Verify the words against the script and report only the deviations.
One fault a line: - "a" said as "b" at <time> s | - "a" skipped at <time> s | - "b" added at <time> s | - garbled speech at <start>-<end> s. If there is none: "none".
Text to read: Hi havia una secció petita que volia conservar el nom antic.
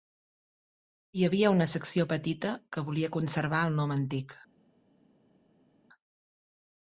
none